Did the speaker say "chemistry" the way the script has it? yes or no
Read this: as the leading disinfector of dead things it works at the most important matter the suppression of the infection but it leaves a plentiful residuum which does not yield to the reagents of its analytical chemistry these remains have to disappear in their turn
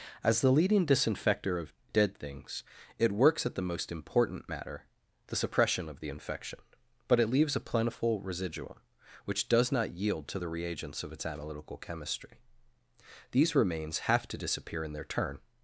yes